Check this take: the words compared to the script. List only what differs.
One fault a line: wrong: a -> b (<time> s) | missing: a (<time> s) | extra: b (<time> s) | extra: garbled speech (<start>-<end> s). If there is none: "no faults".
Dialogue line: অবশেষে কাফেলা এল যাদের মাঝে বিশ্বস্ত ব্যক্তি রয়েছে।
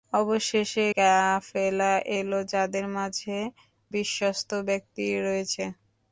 no faults